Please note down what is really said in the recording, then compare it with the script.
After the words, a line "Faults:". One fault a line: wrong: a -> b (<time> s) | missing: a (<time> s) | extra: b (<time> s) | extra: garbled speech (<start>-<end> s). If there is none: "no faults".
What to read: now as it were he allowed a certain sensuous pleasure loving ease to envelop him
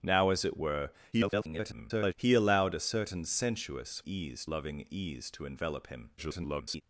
now as it were [garbled] he allowed a certain sensuous ease loving ease to envelop him [garbled]
Faults:
extra: garbled speech (1.1-2.1 s)
wrong: pleasure -> ease (4.1 s)
extra: garbled speech (6.2-6.8 s)